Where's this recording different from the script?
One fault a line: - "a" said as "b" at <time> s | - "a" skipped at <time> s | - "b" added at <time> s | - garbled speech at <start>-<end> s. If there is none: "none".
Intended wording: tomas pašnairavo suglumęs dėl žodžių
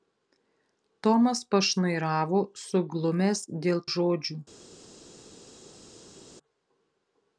none